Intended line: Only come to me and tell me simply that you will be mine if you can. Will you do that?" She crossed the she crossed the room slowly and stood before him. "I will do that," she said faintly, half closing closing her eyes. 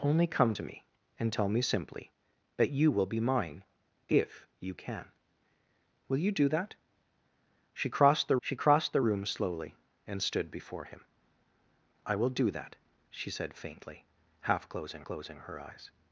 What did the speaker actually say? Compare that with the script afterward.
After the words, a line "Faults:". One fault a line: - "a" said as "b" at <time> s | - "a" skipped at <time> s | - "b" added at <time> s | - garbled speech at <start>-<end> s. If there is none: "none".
Only come to me and tell me simply that you will be mine if you can. Will you do that?" She crossed the she crossed the room slowly and stood before him. "I will do that," she said faintly, half closing closing her eyes.
Faults:
none